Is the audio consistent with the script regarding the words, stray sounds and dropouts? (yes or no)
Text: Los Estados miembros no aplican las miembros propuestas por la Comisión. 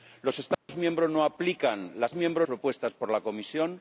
no